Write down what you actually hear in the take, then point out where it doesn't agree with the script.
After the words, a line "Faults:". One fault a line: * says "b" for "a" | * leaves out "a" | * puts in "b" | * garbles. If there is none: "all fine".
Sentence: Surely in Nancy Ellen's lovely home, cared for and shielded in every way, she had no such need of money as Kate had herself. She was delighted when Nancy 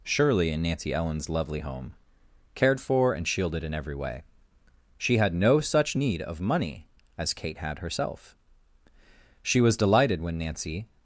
Surely in Nancy Ellen's lovely home, cared for and shielded in every way, she had no such need of money as Kate had herself. She was delighted when Nancy
Faults:
all fine